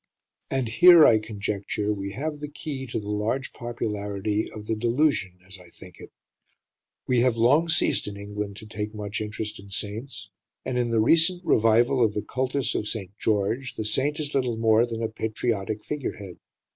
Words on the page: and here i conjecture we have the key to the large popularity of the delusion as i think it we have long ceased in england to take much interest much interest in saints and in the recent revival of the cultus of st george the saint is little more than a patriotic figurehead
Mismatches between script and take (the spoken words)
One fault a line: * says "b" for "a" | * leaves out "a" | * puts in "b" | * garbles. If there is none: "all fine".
* leaves out "much interest"